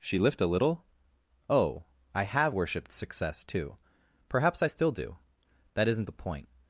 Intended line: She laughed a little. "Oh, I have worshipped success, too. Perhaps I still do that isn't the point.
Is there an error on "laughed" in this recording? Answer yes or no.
yes